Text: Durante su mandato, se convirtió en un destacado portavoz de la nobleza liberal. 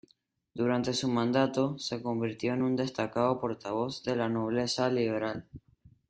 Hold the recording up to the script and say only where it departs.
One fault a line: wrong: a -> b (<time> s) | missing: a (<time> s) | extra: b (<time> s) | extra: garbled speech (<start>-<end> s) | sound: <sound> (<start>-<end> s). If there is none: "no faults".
no faults